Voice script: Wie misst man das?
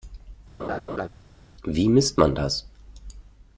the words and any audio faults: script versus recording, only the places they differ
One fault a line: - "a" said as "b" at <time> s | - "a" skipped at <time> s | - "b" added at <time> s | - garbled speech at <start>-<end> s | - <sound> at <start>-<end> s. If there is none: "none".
- laugh at 0.6-1.1 s